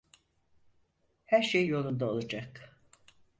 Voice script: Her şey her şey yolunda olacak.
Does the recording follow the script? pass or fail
fail